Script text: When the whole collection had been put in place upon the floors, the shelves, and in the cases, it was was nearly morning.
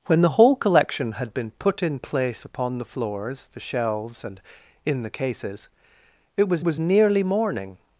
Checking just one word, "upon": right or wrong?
right